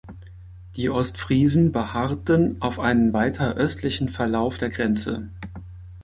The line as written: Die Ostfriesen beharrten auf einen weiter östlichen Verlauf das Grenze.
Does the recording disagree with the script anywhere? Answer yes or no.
yes